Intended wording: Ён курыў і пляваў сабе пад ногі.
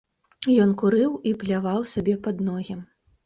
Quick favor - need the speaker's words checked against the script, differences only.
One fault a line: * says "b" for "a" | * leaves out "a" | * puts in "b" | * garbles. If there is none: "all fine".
all fine